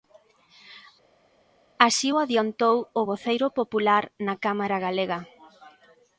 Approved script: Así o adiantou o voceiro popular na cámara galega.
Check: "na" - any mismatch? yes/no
no